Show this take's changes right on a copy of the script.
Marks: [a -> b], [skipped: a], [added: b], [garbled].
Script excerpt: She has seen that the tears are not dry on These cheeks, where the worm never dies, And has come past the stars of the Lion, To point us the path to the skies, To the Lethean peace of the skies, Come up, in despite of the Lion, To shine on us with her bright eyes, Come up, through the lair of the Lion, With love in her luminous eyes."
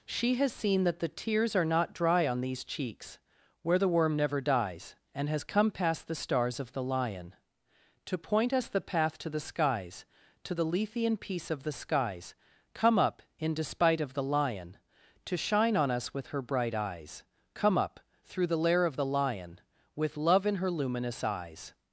She has seen that the tears are not dry on These cheeks, where the worm never dies, And has come past the stars of the Lion, To point us the path to the skies, To the Lethean peace of the skies, Come up, in despite of the Lion, To shine on us with her bright eyes, Come up, through the lair of the Lion, With love in her luminous eyes."